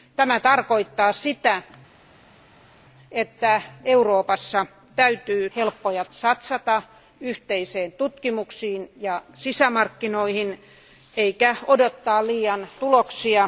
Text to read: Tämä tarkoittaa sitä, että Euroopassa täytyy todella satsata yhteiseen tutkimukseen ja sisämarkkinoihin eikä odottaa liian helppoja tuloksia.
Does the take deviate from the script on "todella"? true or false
true